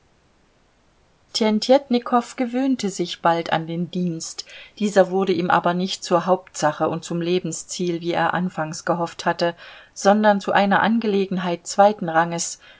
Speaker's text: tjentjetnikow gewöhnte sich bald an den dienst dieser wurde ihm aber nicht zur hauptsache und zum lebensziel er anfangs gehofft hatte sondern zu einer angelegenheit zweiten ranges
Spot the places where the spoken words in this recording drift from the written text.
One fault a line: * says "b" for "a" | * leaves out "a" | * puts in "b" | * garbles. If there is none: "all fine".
* puts in "wie"